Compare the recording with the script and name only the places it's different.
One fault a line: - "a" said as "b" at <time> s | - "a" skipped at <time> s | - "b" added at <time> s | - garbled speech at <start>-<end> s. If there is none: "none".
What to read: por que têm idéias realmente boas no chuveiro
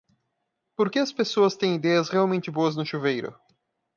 - "as pessoas" added at 1.0 s